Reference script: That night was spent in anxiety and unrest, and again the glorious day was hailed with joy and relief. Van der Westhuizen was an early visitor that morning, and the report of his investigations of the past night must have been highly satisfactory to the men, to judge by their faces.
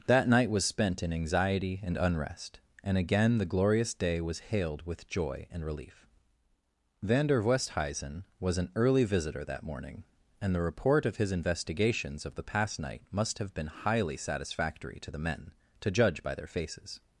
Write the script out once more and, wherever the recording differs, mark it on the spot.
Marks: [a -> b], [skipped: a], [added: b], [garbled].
That night was spent in anxiety and unrest, and again the glorious day was hailed with joy and relief. Van der Westhuizen was an early visitor that morning, and the report of his investigations of the past night must have been highly satisfactory to the men, to judge by their faces.